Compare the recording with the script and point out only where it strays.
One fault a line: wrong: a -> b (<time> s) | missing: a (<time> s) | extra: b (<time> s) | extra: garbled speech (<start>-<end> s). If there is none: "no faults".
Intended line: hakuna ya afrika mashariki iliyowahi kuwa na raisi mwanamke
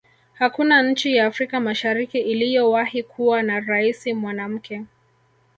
extra: nchi (0.8 s)